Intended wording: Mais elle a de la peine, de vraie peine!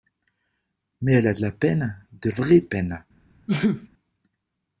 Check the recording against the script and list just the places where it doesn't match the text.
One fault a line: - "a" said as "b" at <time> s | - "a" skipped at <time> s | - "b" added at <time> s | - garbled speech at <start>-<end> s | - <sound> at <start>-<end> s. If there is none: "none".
- sneeze at 3.5-3.9 s